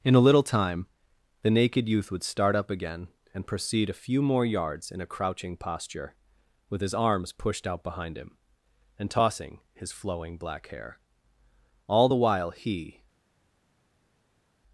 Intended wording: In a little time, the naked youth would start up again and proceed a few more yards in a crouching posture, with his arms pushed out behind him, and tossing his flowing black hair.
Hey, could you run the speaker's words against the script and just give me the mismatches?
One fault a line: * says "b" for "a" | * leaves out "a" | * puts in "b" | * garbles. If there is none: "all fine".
* puts in "All the while he"